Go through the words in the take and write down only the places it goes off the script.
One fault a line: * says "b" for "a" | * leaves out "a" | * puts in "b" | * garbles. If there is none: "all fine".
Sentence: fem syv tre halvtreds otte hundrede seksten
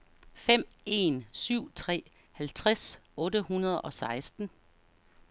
* puts in "en"
* puts in "og"